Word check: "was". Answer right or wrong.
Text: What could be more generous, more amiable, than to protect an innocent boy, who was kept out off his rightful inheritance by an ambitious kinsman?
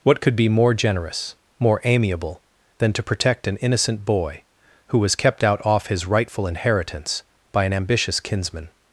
right